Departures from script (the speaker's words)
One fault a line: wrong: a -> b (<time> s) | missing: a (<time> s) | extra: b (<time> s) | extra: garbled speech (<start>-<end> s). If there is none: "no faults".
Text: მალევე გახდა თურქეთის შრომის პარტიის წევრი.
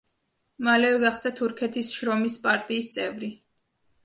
no faults